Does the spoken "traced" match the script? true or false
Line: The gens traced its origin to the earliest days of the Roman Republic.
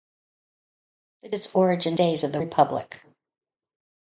false